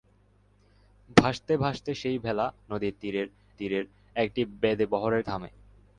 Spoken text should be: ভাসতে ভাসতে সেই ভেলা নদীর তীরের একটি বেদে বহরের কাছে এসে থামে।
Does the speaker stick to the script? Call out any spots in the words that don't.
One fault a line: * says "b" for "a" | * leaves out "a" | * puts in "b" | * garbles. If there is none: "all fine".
* puts in "তীরের"
* leaves out "কাছে এসে"